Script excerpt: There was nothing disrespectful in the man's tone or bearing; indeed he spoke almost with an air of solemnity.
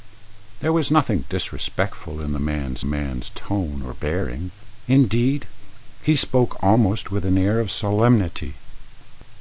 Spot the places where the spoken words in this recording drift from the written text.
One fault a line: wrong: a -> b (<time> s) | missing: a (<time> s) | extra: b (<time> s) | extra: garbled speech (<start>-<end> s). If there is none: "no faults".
extra: man's (2.8 s)